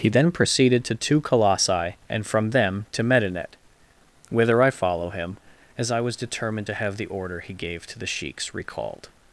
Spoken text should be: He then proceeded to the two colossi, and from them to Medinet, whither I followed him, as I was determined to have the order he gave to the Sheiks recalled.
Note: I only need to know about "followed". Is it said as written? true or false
false